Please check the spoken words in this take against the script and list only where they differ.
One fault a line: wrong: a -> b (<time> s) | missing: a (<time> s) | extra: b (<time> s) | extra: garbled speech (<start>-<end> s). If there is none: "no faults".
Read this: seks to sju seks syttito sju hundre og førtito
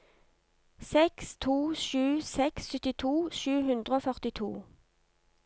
no faults